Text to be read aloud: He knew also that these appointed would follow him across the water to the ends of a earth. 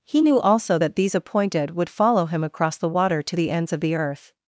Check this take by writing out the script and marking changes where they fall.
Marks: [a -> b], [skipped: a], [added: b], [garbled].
He knew also that these appointed would follow him across the water to the ends of [a -> the] earth.